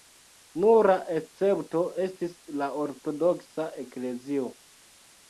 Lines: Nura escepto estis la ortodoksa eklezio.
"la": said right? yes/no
yes